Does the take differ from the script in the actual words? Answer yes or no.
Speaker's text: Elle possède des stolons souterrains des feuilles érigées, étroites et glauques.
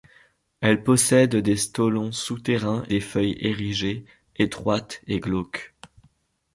no